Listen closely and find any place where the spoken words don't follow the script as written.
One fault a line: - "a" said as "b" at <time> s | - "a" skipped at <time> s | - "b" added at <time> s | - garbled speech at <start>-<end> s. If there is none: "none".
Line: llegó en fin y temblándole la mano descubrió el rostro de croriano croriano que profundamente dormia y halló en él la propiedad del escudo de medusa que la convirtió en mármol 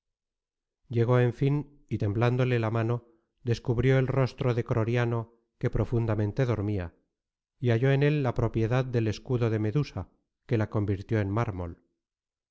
- "croriano" skipped at 5.4 s